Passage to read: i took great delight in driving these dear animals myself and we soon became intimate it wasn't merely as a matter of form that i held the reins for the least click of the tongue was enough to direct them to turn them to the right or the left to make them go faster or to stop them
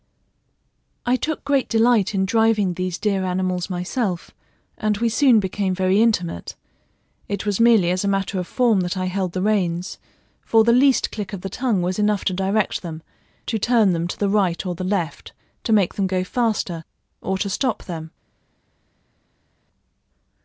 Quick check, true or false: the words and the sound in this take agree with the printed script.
false